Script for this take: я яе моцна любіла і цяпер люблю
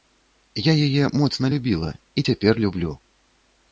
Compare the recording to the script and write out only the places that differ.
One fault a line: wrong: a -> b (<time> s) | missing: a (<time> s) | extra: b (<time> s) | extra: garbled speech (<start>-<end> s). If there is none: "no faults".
no faults